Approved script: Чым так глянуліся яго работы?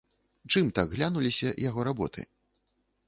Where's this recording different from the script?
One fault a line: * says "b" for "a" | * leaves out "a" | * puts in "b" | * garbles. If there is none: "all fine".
all fine